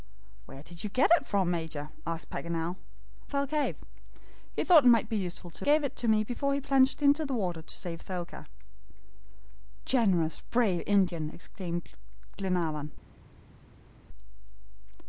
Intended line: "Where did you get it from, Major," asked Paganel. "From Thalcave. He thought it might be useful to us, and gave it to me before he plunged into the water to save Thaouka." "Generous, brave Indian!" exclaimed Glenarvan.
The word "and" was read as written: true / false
false